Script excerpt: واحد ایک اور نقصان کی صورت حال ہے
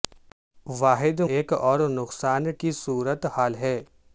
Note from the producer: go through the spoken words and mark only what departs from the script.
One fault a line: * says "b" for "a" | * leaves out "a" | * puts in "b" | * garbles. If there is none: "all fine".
all fine